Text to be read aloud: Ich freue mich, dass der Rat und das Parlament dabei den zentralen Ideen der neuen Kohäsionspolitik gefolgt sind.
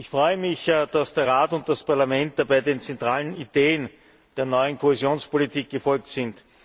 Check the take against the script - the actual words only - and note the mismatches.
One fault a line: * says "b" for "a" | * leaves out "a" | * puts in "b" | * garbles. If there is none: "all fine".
all fine